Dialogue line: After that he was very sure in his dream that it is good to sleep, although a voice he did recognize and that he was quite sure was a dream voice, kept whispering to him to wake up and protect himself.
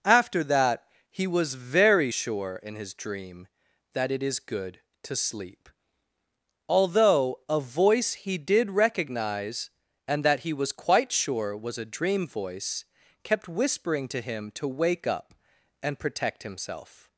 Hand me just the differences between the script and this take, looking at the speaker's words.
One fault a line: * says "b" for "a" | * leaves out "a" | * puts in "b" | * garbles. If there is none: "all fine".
all fine